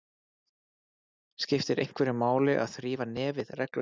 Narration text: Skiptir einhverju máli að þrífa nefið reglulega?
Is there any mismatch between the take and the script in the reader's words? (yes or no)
no